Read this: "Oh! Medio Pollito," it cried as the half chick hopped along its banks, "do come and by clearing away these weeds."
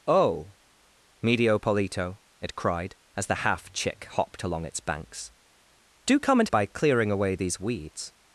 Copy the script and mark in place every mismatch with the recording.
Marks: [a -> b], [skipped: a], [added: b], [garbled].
"Oh! Medio Pollito," it cried as the half chick hopped along its banks, "do come and by clearing away these weeds."